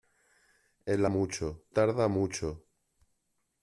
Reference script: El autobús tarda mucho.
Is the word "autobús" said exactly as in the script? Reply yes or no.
no